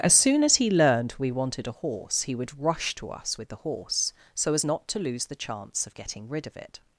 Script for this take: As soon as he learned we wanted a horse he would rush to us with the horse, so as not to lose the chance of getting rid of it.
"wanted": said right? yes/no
yes